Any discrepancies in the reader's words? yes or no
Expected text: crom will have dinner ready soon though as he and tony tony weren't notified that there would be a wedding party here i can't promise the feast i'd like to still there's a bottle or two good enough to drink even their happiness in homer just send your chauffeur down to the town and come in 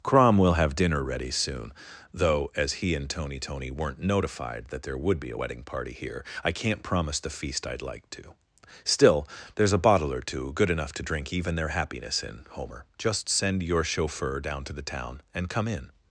no